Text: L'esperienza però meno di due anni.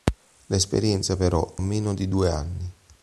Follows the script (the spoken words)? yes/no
yes